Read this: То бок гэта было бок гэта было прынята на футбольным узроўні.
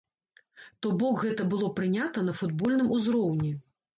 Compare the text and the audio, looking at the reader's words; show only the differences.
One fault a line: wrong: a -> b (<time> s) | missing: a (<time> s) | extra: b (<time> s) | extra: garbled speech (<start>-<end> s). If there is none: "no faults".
missing: бок гэта было (1.7 s)